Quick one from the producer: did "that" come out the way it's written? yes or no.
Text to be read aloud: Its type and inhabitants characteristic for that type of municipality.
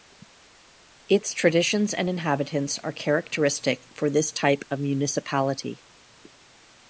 no